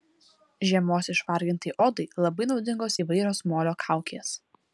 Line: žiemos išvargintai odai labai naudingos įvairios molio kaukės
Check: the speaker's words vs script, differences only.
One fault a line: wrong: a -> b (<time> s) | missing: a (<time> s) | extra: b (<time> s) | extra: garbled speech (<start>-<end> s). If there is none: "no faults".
no faults